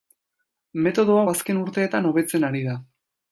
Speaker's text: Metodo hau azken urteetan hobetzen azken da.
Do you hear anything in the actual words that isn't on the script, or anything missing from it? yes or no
yes